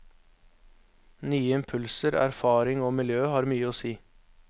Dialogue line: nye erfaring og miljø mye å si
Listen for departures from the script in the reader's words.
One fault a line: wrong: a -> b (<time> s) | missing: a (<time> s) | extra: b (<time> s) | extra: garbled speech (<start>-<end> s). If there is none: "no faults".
extra: impulser (1.6 s)
extra: har (3.4 s)